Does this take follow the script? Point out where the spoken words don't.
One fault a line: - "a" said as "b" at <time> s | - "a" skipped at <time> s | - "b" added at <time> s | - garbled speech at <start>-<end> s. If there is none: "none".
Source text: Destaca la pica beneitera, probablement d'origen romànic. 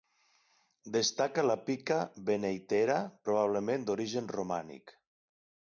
none